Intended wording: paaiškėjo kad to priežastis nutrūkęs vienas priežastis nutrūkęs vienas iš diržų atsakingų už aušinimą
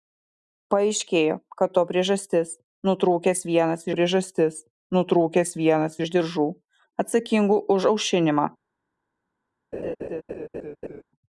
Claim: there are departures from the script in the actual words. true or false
false